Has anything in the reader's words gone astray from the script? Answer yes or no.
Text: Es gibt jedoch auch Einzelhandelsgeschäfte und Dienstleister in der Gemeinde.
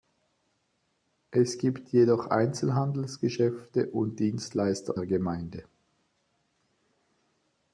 yes